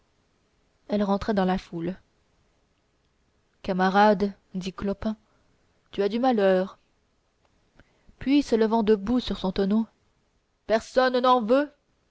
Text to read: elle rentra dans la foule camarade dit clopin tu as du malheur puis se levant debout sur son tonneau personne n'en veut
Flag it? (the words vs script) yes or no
no